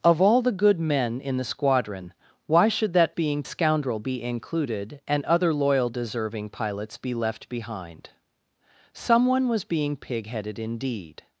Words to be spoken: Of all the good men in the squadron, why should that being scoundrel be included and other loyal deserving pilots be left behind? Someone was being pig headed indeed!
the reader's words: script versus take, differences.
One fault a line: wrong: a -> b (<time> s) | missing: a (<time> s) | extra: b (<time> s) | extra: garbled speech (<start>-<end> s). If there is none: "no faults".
no faults